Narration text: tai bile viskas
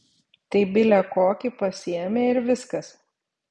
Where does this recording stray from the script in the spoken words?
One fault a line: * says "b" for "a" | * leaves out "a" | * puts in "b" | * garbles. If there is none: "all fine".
* puts in "kokį pasiėmė ir"